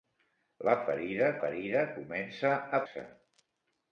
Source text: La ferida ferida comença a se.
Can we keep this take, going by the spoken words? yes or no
yes